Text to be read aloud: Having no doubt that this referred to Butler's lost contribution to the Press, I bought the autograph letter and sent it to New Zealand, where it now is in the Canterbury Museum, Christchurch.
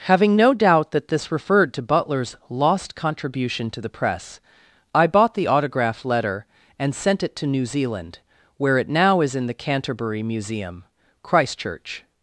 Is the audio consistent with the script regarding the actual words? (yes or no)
yes